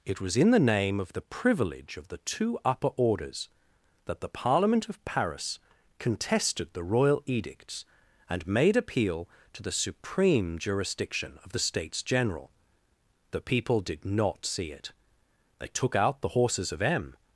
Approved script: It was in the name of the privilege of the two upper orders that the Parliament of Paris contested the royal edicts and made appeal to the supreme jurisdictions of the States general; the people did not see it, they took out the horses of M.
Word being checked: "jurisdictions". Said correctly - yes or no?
no